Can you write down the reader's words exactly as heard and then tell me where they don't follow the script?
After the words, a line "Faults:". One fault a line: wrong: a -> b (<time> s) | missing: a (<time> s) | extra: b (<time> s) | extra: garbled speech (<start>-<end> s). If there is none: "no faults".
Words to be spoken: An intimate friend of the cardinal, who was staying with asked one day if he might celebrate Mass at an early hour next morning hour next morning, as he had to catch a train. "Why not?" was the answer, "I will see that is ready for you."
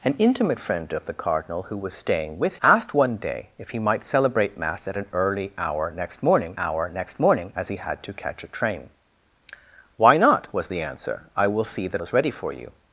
An intimate friend of the cardinal, who was staying with asked one day if he might celebrate Mass at an early hour next morning hour next morning, as he had to catch a train. "Why not?" was the answer, "I will see that is ready for you."
Faults:
no faults